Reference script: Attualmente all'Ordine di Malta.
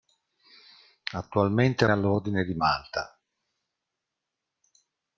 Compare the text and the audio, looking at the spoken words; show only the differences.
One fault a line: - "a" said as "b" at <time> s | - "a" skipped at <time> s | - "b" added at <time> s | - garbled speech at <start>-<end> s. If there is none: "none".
none